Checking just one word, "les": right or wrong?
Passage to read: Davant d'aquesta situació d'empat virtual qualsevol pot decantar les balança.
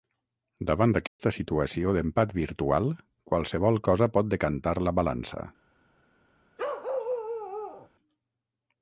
wrong